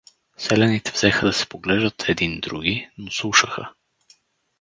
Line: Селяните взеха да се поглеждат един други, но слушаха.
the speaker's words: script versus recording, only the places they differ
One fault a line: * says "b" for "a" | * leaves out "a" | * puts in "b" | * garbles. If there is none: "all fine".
all fine